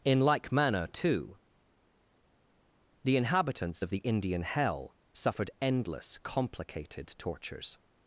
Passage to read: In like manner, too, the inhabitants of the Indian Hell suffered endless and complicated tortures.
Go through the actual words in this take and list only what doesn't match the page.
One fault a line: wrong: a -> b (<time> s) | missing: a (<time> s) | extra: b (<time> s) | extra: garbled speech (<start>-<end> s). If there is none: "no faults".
missing: and (6.2 s)